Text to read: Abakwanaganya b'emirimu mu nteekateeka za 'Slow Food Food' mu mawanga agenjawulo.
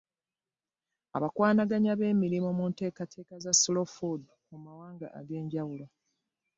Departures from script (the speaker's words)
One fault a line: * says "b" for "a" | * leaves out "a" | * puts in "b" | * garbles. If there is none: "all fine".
* leaves out "Food"